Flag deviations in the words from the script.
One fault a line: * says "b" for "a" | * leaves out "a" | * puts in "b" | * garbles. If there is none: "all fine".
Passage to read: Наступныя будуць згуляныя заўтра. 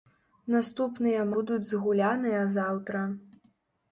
all fine